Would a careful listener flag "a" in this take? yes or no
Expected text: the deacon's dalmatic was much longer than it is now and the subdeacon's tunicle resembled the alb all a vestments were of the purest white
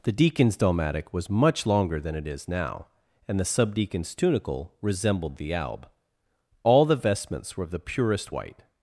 yes